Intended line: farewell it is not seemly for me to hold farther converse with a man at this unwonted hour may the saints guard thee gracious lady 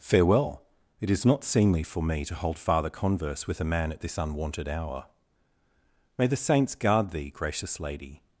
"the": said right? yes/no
yes